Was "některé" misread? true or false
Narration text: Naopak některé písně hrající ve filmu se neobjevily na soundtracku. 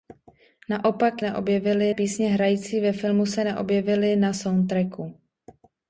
true